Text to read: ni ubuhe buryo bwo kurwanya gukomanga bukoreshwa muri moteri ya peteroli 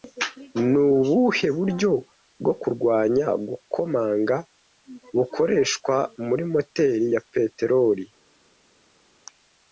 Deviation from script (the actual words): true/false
false